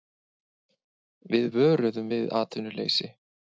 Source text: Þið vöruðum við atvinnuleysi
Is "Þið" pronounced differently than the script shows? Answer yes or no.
yes